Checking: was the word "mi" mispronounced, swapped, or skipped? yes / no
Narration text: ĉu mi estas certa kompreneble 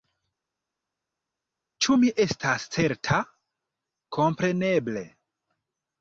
no